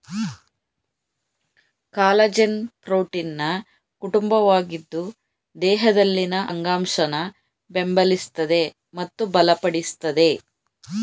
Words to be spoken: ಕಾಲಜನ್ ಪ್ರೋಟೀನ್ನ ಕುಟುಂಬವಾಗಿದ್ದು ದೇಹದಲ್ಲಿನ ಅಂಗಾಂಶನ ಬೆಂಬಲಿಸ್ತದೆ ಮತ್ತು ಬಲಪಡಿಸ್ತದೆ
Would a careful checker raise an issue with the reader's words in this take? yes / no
no